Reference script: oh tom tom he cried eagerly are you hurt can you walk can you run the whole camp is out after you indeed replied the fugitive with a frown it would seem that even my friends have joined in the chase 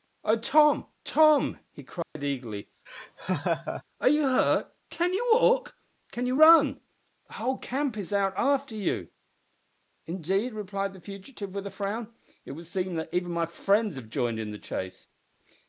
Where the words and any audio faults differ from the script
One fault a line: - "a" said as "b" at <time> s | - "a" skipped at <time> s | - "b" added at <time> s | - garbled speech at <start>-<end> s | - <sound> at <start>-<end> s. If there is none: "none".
- dropout at 2.0-2.2 s
- laugh at 2.9-3.8 s